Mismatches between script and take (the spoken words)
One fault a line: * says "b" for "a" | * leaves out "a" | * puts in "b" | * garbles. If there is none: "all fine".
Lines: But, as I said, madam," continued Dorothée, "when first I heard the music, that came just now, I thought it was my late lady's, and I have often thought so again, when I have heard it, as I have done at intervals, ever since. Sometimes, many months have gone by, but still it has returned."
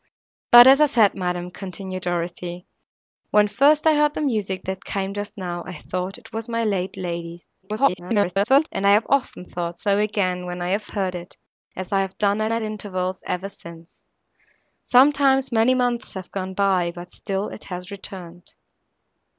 * garbles
* puts in "at"